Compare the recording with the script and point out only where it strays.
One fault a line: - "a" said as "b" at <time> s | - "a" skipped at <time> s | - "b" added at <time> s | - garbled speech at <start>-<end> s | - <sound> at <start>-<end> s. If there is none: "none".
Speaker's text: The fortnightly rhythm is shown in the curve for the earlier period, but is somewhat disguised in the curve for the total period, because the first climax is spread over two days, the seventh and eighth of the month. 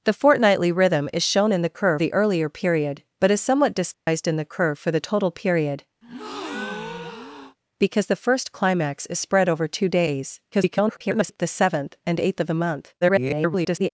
- "for" skipped at 2.0 s
- dropout at 3.9-4.1 s
- breath at 6.0-7.6 s
- garbled speech at 10.5-11.4 s
- garbled speech at 13.0-13.9 s